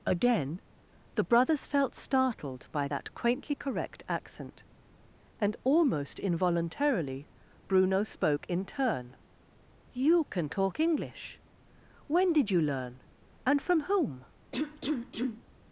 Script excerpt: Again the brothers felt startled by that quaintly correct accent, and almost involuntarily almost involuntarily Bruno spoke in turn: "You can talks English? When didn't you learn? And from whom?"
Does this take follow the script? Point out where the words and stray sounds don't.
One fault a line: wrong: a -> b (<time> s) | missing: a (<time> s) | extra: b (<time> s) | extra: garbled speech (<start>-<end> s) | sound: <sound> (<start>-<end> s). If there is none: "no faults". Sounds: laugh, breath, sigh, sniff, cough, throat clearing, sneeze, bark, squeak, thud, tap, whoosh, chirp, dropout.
missing: almost involuntarily (7.3 s)
wrong: talks -> talk (10.5 s)
wrong: didn't -> did (12.3 s)
sound: cough (14.5-15.4 s)